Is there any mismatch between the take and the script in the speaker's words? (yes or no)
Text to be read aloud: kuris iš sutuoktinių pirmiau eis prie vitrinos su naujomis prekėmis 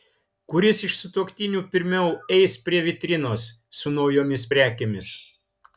no